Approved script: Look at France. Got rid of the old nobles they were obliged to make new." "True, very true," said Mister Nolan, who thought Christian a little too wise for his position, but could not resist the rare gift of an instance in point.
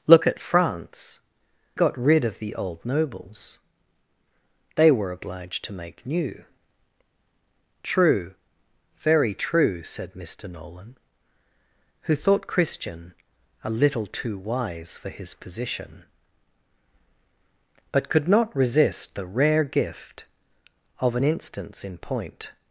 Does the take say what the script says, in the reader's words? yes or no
yes